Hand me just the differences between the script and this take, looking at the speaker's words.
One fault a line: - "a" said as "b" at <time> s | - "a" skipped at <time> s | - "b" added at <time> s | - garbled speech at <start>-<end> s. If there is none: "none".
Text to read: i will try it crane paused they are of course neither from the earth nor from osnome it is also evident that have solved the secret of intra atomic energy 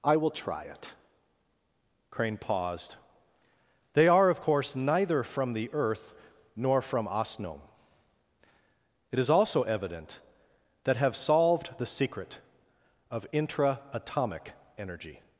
none